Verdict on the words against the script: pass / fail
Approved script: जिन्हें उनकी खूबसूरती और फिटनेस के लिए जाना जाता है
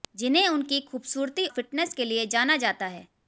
fail